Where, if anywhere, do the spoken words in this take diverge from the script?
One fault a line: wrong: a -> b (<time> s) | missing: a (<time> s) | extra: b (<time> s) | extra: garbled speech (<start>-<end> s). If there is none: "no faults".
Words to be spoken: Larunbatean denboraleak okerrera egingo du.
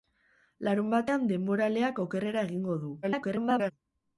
extra: garbled speech (3.0-3.7 s)